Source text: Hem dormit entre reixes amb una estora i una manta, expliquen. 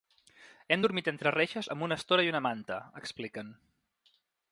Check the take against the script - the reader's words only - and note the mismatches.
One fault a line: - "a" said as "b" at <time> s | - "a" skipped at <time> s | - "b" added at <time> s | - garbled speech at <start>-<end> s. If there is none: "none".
none